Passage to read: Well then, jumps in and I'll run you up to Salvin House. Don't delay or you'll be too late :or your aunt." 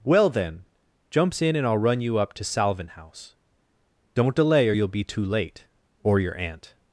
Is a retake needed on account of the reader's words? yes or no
no